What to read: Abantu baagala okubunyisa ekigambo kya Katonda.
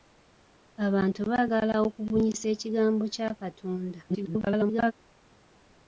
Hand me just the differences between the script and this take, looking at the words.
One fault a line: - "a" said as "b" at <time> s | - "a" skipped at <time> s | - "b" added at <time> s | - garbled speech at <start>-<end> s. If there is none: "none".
- garbled speech at 4.1-4.9 s